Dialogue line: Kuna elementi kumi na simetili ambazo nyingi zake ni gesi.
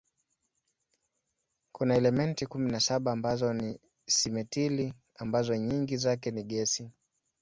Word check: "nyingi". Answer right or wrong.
right